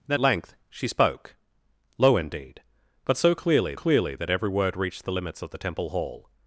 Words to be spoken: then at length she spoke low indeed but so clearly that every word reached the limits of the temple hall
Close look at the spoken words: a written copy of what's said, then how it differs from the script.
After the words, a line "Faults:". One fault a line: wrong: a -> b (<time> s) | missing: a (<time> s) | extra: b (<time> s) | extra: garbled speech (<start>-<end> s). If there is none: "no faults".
then length she spoke low indeed but so clearly clearly that every word reached the limits of the temple hall
Faults:
missing: at (0.2 s)
extra: clearly (3.7 s)